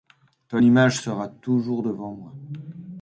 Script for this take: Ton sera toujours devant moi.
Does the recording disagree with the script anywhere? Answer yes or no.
yes